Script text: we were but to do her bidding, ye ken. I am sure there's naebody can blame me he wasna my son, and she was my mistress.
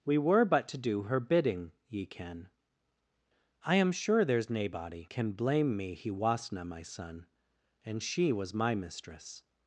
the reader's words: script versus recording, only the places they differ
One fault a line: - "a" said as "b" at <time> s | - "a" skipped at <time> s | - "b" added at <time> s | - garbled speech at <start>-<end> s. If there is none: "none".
none